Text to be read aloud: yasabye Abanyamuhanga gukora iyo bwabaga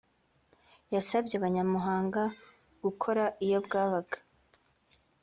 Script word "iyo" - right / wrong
right